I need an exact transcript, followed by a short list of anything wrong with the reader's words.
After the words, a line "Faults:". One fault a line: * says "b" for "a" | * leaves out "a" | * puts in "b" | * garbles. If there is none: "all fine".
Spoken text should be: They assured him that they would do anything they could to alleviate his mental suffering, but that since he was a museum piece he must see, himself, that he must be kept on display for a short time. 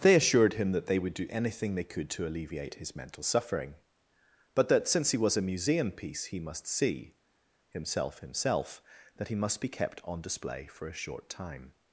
They assured him that they would do anything they could to alleviate his mental suffering, but that since he was a museum piece he must see, himself himself, that he must be kept on display for a short time.
Faults:
* puts in "himself"